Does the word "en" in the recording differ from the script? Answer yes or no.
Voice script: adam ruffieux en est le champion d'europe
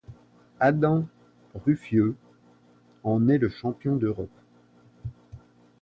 no